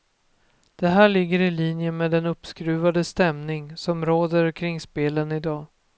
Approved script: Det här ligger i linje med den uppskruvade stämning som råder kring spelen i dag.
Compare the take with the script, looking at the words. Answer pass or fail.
pass